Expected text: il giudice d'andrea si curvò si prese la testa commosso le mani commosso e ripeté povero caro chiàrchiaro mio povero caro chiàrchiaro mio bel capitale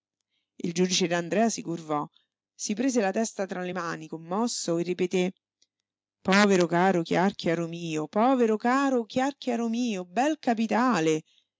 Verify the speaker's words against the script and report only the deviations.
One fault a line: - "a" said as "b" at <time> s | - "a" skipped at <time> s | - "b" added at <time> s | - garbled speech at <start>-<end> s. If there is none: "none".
- "commosso" said as "tra" at 3.5 s